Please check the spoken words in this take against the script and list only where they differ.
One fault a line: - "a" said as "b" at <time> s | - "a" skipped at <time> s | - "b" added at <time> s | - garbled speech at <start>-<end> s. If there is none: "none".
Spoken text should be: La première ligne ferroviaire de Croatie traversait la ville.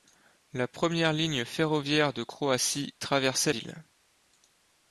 - "la" skipped at 3.5 s